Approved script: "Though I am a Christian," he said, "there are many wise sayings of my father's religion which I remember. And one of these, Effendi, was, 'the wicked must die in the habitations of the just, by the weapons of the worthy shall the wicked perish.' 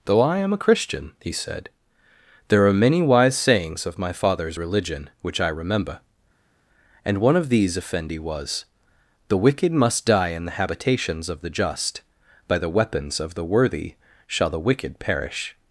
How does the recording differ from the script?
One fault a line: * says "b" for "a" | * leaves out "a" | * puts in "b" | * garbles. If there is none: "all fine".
all fine